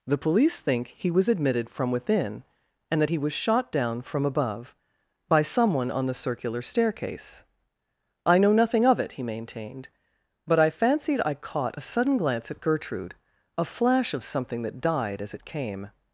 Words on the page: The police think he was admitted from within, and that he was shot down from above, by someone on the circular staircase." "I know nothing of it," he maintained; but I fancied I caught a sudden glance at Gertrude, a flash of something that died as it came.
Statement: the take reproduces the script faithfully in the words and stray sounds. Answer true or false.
true